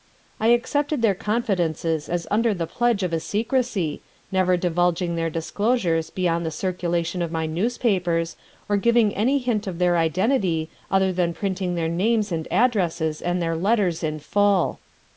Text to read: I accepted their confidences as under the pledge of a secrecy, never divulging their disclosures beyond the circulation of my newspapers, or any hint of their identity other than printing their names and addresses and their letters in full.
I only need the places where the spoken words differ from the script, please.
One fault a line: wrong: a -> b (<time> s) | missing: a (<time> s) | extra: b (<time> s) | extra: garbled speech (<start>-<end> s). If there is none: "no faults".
extra: giving (8.8 s)